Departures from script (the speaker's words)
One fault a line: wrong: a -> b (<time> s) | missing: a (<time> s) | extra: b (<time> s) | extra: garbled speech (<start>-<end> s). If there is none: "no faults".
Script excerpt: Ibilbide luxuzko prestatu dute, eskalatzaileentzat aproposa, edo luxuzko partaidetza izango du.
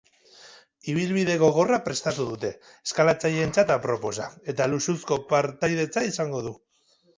wrong: luxuzko -> gogorra (1.4 s)
wrong: edo -> eta (4.5 s)